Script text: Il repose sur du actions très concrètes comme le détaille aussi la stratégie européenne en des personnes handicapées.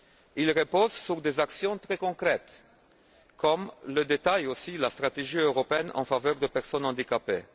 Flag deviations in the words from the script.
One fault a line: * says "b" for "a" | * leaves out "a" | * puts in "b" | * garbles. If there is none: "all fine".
* says "des" for "du"
* puts in "faveur"